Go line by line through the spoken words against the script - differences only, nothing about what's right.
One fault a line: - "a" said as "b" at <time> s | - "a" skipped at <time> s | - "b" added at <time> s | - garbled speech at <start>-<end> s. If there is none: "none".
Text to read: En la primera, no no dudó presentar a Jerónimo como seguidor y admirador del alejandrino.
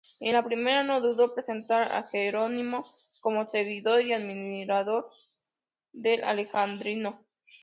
- "no" skipped at 1.0 s